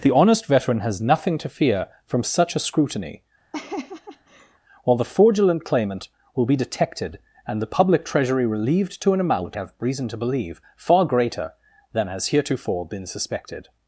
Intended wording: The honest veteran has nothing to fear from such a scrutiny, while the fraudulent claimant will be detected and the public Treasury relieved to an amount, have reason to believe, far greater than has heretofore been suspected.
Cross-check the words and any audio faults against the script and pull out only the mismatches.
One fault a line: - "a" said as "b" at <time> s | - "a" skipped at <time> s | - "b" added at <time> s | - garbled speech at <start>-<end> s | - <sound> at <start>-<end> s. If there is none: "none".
- laugh at 3.5-4.6 s